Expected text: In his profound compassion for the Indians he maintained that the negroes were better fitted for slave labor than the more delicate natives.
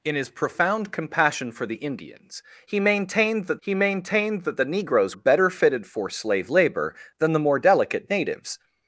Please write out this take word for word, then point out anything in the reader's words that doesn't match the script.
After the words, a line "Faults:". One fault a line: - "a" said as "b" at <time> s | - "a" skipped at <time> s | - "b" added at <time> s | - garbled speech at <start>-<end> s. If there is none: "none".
In his profound compassion for the Indians he maintained that he maintained that the negroes better fitted for slave labor than the more delicate natives.
Faults:
- "he maintained that" added at 3.6 s
- "were" skipped at 5.1 s